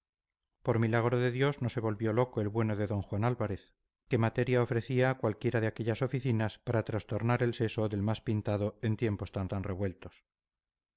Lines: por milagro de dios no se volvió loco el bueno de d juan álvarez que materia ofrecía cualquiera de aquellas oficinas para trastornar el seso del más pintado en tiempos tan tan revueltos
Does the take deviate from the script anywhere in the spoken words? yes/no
no